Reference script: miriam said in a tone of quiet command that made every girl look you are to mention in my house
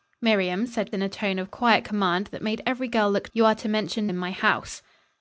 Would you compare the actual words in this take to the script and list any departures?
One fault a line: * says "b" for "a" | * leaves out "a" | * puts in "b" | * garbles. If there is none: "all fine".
all fine